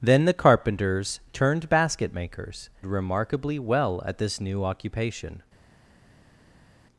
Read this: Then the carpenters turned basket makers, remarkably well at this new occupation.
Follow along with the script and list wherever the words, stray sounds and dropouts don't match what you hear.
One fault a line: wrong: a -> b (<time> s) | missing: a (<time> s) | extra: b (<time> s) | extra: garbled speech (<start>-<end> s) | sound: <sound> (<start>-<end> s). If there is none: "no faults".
no faults